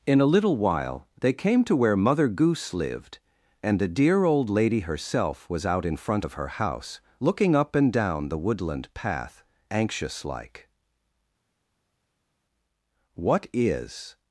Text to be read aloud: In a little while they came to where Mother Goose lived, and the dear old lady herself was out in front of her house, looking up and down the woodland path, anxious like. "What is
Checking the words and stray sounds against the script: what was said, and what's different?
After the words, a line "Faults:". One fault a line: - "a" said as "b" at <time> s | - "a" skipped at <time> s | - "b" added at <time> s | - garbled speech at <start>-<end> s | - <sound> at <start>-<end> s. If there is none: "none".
In a little while they came to where Mother Goose lived, and the dear old lady herself was out in front of her house, looking up and down the woodland path, anxious like. "What is
Faults:
none